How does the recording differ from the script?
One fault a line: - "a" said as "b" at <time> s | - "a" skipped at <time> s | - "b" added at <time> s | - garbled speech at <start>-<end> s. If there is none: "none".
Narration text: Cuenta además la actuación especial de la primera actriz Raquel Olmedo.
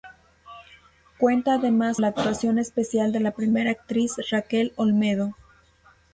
none